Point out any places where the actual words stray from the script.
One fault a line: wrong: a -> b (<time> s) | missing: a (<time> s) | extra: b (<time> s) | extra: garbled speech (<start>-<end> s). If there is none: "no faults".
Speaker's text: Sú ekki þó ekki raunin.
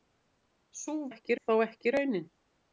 no faults